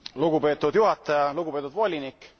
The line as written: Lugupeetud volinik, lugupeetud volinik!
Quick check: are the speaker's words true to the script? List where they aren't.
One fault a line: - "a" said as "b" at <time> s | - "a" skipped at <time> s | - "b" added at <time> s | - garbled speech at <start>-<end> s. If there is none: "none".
- "volinik" said as "juhataja" at 0.7 s